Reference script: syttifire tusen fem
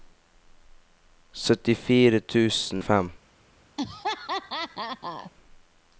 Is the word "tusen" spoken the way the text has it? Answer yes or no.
yes